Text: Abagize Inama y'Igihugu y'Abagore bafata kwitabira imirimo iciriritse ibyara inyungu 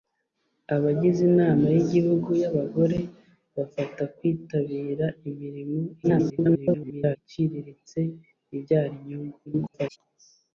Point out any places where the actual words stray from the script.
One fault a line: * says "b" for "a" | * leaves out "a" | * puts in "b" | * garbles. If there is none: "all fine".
* garbles
* garbles